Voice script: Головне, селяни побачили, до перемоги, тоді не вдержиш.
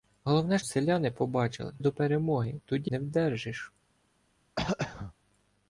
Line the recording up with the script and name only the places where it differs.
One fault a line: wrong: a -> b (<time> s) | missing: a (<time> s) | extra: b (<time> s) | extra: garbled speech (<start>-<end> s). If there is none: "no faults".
no faults